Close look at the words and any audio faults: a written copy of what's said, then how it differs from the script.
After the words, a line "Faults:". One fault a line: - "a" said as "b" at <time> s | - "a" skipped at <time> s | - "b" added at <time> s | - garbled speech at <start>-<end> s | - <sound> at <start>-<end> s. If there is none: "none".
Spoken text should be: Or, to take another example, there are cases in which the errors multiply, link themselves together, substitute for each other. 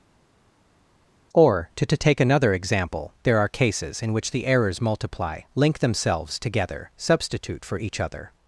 Or, to to take another example, there are cases in which the errors multiply, link themselves together, substitute for each other.
Faults:
- "to" added at 1.8 s